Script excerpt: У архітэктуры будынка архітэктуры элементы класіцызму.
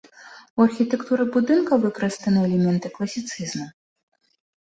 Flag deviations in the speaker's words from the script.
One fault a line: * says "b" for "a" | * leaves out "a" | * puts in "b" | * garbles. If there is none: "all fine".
* says "выкарыстаны" for "архітэктуры"